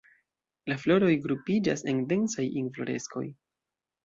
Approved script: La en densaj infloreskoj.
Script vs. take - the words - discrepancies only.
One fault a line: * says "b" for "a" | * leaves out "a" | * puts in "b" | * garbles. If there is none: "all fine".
* puts in "floroj grupiĝas"